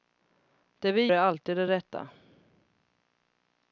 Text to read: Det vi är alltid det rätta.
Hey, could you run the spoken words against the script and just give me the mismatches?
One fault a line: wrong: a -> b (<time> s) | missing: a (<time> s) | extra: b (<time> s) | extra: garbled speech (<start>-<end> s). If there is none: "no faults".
no faults